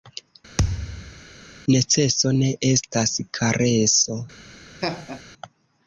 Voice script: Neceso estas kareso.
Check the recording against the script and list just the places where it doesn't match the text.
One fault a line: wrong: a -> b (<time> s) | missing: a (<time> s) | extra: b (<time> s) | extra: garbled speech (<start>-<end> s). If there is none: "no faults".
extra: ne (2.4 s)